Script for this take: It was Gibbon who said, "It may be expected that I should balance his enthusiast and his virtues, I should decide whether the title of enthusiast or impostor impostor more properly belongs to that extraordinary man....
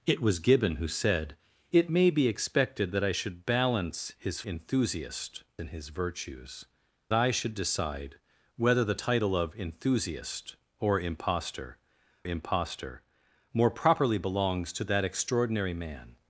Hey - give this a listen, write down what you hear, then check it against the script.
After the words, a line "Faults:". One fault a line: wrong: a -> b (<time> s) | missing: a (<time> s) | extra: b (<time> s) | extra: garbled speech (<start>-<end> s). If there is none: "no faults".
It was Gibbon who said, "It may be expected that I should balance his enthusiast and his virtues, I should decide whether the title of enthusiast or impostor impostor more properly belongs to that extraordinary man....
Faults:
no faults